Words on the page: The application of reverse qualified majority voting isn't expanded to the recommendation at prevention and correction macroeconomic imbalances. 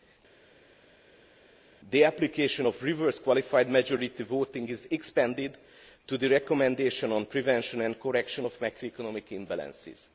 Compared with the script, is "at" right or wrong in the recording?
wrong